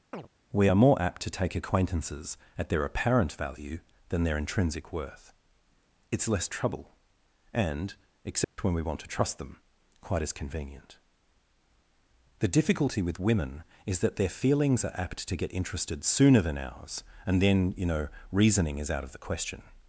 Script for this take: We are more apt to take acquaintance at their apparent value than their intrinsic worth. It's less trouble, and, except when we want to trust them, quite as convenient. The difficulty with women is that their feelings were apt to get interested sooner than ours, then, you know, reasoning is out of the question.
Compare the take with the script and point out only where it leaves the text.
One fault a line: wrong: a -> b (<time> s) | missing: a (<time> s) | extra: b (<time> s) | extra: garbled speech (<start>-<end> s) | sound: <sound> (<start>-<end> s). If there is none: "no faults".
sound: chirp (0.1-0.3 s)
wrong: acquaintance -> acquaintances (1.5 s)
sound: dropout (8.4-8.6 s)
wrong: were -> are (14.8 s)
extra: and (17.3 s)